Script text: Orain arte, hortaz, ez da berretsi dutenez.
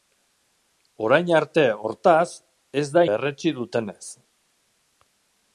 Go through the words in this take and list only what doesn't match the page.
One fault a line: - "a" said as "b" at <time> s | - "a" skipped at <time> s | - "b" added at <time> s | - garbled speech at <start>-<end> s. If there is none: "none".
none